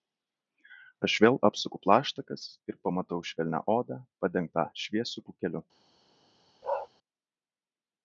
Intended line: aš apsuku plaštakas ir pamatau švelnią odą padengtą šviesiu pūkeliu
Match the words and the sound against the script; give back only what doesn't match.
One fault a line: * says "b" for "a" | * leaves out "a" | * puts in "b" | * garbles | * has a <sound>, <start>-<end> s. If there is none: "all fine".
* puts in "vėl"
* has a bark, 6.6-6.9 s